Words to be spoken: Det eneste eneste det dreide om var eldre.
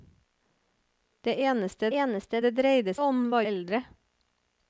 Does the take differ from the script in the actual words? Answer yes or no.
no